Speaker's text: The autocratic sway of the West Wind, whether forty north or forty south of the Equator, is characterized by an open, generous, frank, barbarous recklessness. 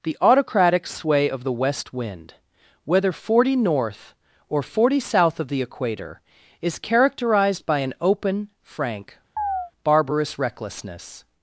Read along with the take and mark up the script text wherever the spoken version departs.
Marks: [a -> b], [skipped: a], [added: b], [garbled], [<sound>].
The autocratic sway of the West Wind, whether forty north or forty south of the Equator, is characterized by an open, [skipped: generous,] frank, [chirp] barbarous recklessness.